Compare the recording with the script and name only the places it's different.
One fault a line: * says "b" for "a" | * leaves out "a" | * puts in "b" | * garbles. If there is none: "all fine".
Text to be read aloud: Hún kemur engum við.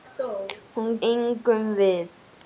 * leaves out "kemur"